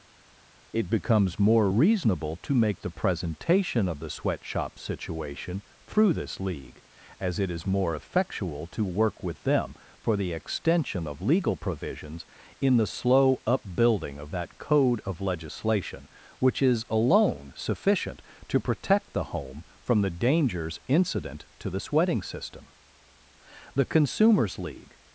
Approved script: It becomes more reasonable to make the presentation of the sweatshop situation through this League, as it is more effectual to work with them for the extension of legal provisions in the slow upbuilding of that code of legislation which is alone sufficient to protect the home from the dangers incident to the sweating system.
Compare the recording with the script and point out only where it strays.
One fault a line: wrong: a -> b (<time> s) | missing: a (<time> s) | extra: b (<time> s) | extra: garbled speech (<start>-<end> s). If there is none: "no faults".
extra: The Consumers League (23.8 s)